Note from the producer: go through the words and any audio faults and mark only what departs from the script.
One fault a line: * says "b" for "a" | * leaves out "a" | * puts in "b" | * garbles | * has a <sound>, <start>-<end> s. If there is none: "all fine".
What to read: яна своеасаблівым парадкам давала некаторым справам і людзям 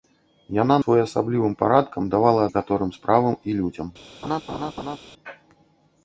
* has a laugh, 4.2-5.0 s